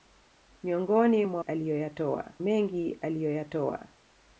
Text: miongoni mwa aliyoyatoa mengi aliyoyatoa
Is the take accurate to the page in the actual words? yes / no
yes